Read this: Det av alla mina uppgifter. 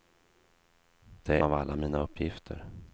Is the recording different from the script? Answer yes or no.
no